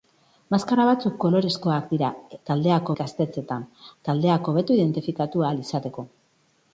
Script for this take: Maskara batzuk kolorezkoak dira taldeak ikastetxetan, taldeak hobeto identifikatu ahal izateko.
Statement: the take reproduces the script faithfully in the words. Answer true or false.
true